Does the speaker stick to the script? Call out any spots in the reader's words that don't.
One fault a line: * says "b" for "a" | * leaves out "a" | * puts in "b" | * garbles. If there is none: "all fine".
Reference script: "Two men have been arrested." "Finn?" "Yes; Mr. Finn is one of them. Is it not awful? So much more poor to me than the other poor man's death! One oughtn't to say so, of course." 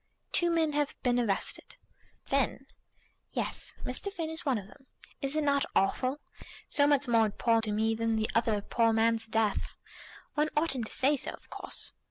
all fine